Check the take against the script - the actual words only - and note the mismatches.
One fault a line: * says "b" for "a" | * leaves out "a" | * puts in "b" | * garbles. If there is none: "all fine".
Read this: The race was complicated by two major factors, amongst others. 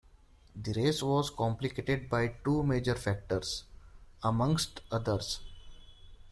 all fine